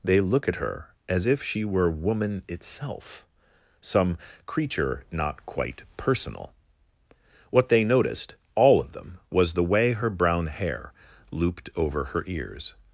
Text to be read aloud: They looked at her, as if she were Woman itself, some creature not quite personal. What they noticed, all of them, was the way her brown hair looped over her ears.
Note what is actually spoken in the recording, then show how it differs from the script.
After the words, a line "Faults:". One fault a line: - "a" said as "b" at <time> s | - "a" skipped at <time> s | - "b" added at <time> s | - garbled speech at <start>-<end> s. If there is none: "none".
They look at her, as if she were Woman itself, some creature not quite personal. What they noticed, all of them, was the way her brown hair looped over her ears.
Faults:
- "looked" said as "look" at 0.2 s